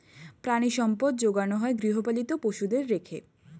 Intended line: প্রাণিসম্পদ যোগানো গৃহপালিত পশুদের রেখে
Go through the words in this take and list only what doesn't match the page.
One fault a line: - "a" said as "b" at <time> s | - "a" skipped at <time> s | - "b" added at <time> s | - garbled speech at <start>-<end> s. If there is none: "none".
- "হয়" added at 1.6 s